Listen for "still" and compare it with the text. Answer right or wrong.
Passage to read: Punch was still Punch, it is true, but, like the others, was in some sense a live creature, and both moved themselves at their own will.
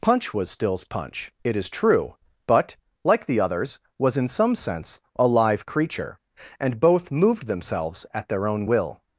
wrong